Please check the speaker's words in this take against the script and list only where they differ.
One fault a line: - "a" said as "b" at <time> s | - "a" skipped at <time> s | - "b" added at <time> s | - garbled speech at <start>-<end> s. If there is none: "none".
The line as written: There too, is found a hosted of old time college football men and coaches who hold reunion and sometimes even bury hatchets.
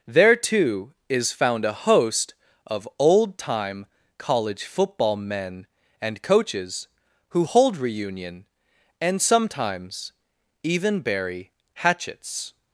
- "hosted" said as "host" at 1.7 s